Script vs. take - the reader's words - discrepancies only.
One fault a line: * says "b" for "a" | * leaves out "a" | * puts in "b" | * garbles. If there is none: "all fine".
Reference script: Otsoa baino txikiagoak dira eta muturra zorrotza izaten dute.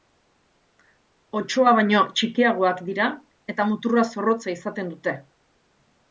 all fine